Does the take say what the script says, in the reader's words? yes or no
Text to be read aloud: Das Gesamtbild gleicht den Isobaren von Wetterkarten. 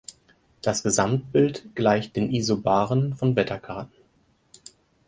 yes